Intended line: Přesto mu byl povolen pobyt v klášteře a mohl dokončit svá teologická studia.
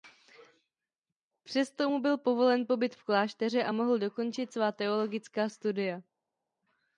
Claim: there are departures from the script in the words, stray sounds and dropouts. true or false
false